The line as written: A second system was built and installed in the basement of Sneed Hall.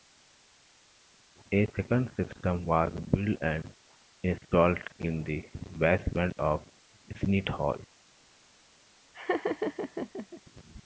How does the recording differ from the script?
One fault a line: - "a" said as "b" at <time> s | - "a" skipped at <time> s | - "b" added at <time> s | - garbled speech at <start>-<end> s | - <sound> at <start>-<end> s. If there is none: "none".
- laugh at 9.1-10.4 s